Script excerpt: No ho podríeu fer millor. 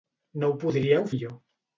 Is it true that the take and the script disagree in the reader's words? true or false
true